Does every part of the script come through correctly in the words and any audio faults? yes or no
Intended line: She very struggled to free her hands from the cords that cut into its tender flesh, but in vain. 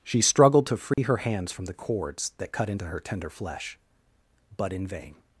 no